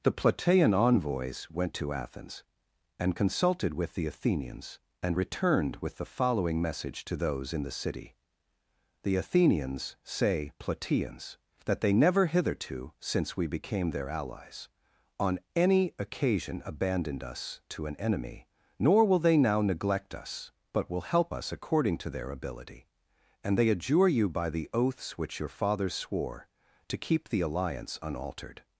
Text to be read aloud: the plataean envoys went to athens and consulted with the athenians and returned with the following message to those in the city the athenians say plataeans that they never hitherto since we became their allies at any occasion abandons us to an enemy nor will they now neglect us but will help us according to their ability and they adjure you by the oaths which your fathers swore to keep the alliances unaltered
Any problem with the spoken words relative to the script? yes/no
yes